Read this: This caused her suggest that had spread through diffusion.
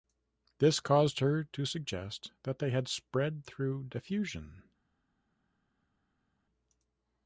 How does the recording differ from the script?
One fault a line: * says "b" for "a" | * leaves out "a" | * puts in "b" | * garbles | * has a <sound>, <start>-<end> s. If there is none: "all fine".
* puts in "to"
* puts in "they"